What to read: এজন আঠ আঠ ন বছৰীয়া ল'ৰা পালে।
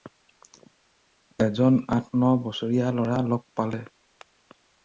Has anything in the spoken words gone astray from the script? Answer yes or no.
yes